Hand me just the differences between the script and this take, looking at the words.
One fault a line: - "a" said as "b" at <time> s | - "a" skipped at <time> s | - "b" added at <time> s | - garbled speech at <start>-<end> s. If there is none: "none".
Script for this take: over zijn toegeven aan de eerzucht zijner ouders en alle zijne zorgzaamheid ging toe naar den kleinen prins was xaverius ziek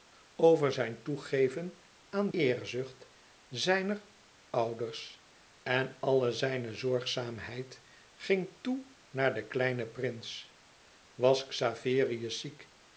- "de" skipped at 2.3 s